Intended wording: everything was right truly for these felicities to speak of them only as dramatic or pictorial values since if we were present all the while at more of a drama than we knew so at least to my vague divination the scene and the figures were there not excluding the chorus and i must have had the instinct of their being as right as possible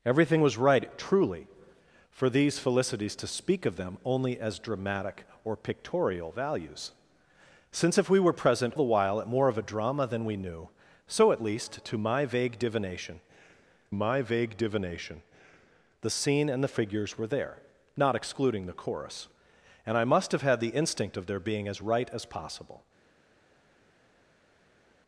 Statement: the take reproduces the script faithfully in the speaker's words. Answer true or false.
false